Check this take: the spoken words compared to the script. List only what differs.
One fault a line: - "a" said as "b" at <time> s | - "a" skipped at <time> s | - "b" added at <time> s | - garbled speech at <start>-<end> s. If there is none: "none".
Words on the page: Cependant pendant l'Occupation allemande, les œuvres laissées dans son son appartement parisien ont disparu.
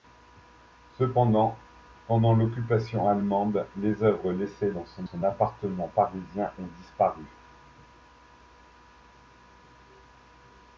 none